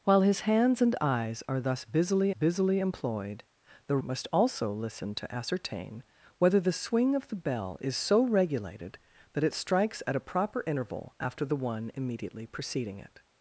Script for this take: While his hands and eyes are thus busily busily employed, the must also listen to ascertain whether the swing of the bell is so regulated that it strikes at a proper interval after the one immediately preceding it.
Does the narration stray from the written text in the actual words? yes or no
no